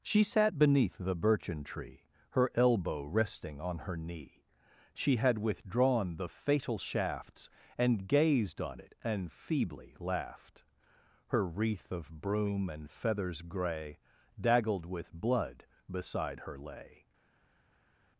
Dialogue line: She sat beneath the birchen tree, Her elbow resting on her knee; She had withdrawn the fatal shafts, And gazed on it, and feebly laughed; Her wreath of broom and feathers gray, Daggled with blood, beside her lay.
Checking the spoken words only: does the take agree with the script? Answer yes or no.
yes